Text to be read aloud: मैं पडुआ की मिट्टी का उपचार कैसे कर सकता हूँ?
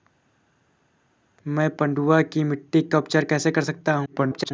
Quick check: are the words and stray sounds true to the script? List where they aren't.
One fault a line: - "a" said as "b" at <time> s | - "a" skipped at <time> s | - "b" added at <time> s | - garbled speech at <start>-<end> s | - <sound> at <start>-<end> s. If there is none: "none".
- garbled speech at 4.1-4.5 s